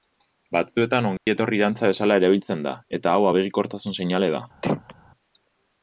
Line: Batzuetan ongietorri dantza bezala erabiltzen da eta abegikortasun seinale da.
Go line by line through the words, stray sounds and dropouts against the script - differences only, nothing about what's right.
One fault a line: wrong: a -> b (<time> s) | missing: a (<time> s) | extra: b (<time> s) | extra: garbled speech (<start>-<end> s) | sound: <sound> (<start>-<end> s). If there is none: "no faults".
sound: dropout (1.2-1.3 s)
extra: hau (3.2 s)
sound: throat clearing (4.6-4.9 s)